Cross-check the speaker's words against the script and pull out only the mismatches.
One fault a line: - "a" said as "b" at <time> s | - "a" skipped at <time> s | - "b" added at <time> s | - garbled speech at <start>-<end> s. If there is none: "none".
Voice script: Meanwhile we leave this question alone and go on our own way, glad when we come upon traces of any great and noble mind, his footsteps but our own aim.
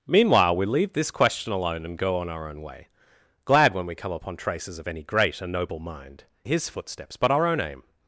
none